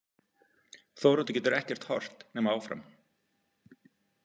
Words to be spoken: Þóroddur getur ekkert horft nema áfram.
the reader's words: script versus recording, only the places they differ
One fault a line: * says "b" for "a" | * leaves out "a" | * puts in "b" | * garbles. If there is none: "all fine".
all fine